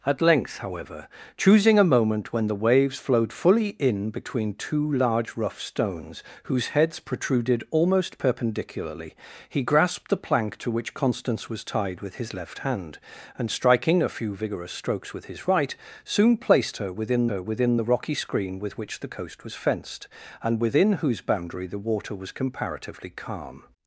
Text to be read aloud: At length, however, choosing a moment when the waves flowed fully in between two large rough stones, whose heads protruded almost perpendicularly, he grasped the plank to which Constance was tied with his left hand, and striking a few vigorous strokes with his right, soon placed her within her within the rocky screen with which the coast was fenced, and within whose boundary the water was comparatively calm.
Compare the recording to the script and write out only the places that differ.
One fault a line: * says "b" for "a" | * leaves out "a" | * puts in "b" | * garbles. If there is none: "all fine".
all fine